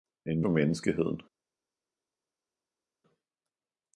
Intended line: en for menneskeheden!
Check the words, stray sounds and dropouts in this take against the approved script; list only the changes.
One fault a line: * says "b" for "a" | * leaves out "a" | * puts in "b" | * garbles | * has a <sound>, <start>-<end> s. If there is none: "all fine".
all fine